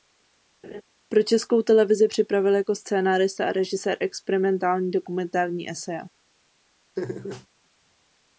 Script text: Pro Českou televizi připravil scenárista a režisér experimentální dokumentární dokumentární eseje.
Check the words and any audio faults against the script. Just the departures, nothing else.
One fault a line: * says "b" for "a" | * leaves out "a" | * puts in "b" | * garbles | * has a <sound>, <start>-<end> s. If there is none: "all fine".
* has a laugh, 0.6-0.8 s
* puts in "jako"
* leaves out "dokumentární"
* has a laugh, 7.0-7.5 s